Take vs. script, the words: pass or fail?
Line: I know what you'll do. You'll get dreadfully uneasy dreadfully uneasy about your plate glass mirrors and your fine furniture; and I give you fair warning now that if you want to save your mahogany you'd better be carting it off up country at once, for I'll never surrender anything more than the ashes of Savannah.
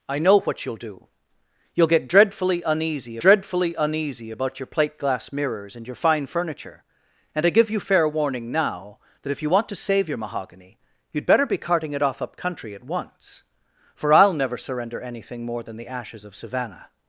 pass